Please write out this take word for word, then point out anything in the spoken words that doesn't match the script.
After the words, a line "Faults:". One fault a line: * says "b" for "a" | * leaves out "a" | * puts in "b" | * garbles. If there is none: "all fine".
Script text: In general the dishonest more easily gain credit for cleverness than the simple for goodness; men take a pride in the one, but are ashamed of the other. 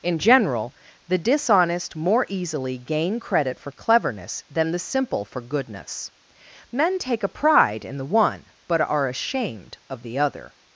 In general the dishonest more easily gain credit for cleverness than the simple for goodness; men take a pride in the one, but are ashamed of the other.
Faults:
all fine